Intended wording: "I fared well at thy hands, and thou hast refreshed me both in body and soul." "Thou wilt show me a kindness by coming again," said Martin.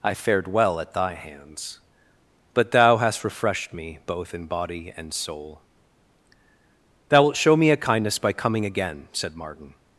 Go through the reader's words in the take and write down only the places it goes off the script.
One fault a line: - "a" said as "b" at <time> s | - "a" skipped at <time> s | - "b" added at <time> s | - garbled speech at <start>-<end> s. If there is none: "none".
- "and" said as "but" at 2.5 s